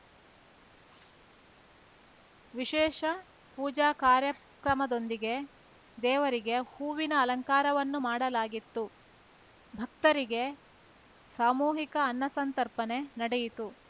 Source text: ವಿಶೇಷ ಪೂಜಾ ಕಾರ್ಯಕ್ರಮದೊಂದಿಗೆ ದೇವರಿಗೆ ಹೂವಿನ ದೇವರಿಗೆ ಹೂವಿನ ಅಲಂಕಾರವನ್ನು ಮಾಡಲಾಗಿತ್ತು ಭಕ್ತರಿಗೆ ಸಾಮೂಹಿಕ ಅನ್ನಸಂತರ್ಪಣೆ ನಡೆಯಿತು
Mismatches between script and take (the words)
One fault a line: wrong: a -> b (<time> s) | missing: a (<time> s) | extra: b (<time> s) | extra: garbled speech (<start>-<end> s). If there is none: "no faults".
missing: ದೇವರಿಗೆ ಹೂವಿನ (7.1 s)